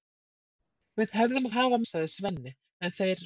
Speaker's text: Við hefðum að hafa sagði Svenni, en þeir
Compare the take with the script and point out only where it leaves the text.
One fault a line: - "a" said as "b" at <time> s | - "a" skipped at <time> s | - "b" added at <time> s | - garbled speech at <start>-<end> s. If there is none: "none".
none